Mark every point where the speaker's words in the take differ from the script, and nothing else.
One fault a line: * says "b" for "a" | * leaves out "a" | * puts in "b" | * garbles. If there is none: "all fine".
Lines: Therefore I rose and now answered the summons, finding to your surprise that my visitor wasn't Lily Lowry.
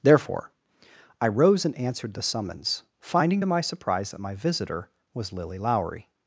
* leaves out "now"
* says "my" for "your"
* says "was" for "wasn't"